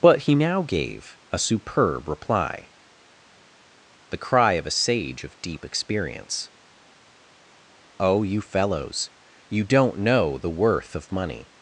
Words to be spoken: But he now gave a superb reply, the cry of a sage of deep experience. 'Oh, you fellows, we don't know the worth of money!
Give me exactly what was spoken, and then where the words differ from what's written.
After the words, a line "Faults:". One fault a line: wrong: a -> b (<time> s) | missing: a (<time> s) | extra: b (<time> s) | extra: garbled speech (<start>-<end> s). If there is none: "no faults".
But he now gave a superb reply, the cry of a sage of deep experience. 'Oh, you fellows, you don't know the worth of money!
Faults:
wrong: we -> you (9.5 s)